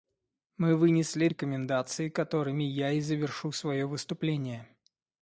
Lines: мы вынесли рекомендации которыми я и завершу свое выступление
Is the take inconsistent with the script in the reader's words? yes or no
no